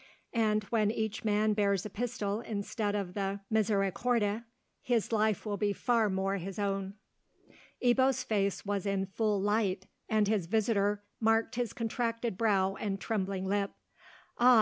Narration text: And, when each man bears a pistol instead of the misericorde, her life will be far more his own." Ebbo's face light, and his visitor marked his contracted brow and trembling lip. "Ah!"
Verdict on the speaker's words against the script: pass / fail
fail